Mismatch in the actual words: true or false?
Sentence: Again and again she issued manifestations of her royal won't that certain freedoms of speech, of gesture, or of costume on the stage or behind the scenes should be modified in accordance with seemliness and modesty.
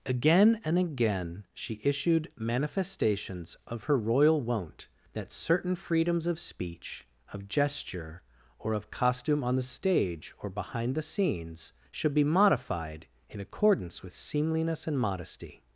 false